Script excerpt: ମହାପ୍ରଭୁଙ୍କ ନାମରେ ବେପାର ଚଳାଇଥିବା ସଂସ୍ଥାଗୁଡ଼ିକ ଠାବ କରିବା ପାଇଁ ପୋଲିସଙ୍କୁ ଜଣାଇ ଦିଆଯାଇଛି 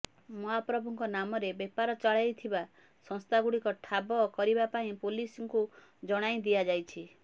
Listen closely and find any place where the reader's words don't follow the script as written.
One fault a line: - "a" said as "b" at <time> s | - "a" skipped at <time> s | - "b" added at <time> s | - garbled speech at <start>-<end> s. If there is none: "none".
none